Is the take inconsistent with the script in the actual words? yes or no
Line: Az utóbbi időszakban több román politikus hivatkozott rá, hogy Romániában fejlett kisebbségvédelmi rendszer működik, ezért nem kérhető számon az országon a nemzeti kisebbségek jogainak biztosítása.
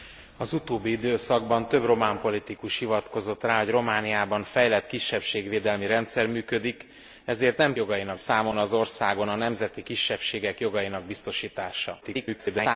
yes